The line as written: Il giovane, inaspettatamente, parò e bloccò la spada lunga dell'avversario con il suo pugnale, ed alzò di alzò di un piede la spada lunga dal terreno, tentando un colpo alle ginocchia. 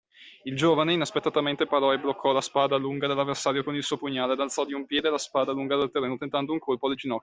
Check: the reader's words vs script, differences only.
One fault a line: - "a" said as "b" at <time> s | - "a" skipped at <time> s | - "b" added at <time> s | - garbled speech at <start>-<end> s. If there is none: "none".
- "alzò di" skipped at 4.7 s